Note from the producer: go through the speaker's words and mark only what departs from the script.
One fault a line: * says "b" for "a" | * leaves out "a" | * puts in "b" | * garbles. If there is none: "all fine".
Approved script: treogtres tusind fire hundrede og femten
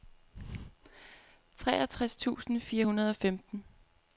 all fine